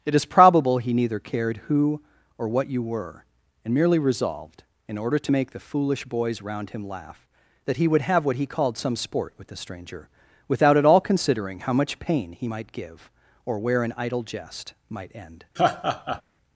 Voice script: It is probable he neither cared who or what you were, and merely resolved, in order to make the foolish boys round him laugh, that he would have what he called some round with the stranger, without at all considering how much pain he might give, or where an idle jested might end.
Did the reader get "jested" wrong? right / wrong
wrong